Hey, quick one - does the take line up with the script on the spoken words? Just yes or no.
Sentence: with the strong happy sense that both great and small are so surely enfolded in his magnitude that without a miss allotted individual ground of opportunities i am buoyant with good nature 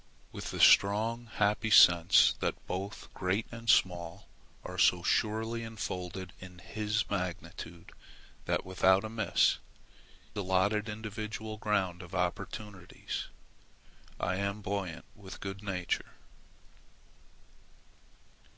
yes